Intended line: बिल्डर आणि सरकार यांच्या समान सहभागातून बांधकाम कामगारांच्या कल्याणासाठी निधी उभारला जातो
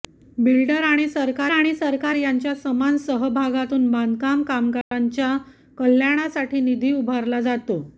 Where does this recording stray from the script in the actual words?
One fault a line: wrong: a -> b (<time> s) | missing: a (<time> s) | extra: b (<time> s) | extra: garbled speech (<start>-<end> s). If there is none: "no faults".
extra: आणि सरकार (1.5 s)